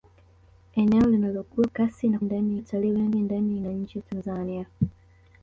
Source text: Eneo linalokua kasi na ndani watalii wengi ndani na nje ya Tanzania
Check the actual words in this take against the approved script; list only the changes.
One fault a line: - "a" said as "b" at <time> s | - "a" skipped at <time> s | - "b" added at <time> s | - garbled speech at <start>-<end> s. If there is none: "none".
none